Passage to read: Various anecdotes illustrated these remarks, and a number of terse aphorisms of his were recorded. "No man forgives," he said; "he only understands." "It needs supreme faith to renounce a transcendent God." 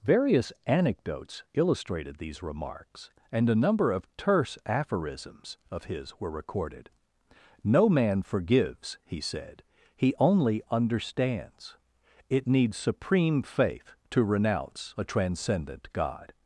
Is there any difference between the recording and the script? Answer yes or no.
no